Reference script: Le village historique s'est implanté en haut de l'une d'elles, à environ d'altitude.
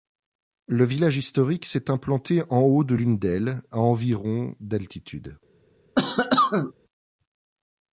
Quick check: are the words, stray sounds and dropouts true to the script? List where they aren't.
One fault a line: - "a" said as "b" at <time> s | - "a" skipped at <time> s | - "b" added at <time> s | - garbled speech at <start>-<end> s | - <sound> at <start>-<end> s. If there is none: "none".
- cough at 6.0-6.7 s